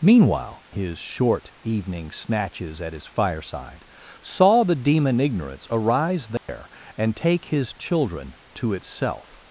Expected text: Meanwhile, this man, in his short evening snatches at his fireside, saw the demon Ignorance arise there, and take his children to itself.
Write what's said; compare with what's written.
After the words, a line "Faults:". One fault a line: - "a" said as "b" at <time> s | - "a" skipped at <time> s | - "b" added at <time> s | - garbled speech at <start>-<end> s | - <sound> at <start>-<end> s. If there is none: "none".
Meanwhile, his short evening snatches at his fireside, saw the demon Ignorance arise there, and take his children to itself.
Faults:
- "this man in" skipped at 0.6 s
- dropout at 6.4-6.5 s